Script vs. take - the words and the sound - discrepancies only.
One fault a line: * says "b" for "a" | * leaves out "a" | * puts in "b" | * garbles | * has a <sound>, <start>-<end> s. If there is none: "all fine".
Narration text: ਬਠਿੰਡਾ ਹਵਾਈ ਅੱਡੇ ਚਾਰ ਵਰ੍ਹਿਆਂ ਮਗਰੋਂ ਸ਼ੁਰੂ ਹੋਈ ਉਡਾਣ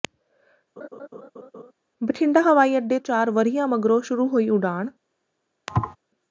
* has a laugh, 0.8-1.7 s
* has a thud, 5.7-6.0 s